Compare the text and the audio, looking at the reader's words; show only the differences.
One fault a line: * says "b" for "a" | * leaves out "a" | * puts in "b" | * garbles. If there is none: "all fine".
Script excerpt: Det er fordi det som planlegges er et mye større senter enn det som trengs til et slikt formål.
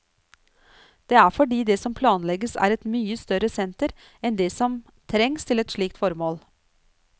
all fine